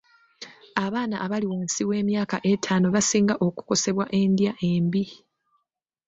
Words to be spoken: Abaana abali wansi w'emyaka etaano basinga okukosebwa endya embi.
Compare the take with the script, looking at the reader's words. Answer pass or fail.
pass